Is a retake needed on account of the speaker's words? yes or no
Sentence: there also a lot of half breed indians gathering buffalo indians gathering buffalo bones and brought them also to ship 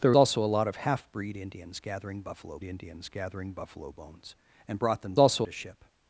no